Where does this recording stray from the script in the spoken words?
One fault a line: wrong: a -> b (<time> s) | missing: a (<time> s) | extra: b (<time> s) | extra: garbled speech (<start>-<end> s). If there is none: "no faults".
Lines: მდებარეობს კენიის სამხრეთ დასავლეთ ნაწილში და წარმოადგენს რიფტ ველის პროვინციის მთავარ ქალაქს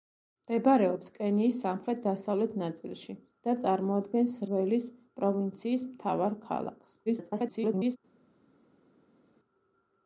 missing: რიფტ (4.4 s)
extra: garbled speech (7.1-8.0 s)